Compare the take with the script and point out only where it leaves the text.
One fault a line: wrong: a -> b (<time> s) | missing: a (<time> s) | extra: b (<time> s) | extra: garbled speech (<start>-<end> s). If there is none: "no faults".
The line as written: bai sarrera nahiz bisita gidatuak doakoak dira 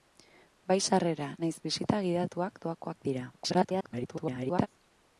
extra: garbled speech (3.3-4.7 s)